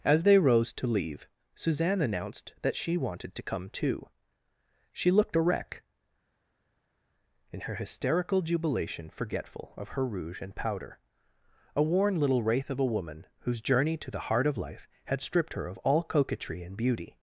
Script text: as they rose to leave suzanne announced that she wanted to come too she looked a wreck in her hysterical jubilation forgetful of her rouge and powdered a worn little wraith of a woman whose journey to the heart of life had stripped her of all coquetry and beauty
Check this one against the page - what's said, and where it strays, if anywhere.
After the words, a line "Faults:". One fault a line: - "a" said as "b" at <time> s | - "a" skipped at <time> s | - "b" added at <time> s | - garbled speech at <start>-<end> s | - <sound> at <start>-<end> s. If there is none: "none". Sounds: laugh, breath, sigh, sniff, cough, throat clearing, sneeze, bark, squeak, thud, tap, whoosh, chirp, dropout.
as they rose to leave suzanne announced that she wanted to come too she looked a wreck in her hysterical jubilation forgetful of her rouge and powder a worn little wraith of a woman whose journey to the heart of life had stripped her of all coquetry and beauty
Faults:
- "powdered" said as "powder" at 10.6 s